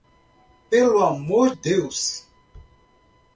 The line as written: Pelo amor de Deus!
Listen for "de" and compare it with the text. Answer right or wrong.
wrong